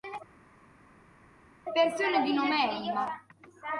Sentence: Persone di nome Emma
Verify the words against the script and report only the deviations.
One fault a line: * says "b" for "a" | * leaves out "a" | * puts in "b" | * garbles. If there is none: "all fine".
all fine